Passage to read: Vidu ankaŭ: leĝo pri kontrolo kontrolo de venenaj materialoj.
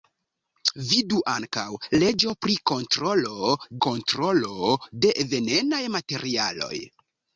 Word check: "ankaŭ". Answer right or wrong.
right